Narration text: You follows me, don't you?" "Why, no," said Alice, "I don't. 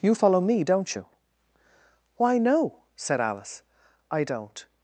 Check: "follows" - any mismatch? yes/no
yes